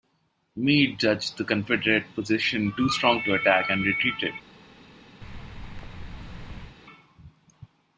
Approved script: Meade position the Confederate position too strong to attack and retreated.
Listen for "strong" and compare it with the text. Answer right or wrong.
right